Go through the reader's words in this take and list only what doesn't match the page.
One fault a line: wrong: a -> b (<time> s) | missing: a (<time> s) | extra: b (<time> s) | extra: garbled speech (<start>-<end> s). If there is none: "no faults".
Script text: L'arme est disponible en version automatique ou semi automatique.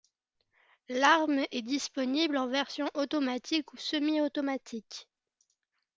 no faults